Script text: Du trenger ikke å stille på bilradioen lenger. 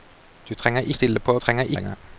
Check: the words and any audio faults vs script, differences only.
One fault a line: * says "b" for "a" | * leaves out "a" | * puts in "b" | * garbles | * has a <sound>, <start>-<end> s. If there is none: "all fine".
* leaves out "ikke"
* says "trenger" for "bilradioen"